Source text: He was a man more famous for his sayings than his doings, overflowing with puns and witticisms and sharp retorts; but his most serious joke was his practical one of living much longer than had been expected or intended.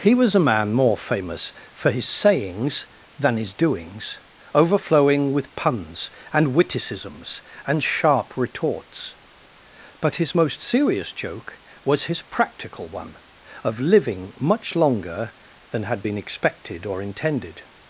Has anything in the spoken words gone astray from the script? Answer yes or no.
no